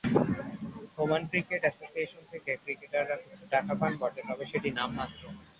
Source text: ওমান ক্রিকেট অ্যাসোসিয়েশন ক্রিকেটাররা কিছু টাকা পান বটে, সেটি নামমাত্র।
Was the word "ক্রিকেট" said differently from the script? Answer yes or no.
no